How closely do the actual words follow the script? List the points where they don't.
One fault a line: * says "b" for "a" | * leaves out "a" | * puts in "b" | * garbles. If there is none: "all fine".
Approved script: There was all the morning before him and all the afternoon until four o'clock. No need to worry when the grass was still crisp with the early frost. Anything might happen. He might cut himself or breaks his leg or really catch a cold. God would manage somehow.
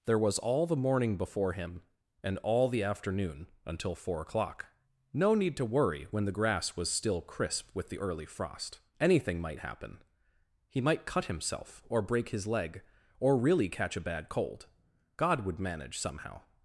* says "break" for "breaks"
* puts in "bad"